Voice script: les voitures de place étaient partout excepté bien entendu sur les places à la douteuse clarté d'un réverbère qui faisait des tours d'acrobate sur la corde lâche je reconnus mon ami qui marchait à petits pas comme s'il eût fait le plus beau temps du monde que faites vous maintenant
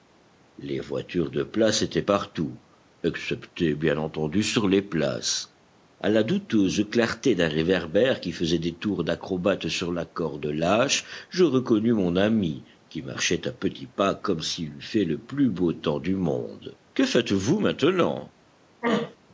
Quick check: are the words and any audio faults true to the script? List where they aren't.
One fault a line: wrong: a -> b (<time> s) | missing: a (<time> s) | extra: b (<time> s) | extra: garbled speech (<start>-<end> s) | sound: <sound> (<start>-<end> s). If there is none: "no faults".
sound: throat clearing (18.8-19.2 s)